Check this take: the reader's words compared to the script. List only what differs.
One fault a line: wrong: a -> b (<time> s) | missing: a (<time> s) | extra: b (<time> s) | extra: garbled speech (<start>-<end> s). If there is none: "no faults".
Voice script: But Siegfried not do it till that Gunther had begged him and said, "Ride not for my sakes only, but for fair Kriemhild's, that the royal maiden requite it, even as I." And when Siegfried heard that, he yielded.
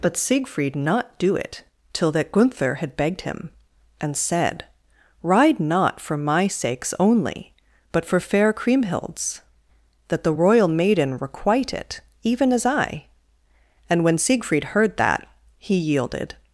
no faults